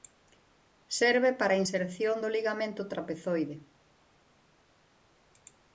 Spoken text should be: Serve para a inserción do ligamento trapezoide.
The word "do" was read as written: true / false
true